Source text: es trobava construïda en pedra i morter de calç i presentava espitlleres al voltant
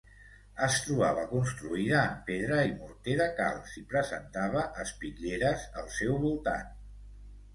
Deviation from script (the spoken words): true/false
true